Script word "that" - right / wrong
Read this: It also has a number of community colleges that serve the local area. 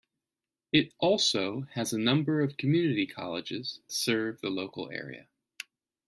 wrong